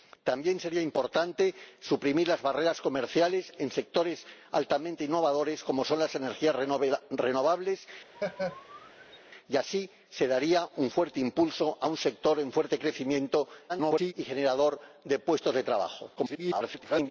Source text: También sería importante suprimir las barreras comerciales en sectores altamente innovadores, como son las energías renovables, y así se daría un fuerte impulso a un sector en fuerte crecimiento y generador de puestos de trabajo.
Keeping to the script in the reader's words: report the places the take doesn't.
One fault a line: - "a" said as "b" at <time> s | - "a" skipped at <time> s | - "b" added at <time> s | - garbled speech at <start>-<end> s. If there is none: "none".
- garbled speech at 13.7-14.1 s
- garbled speech at 16.2-17.1 s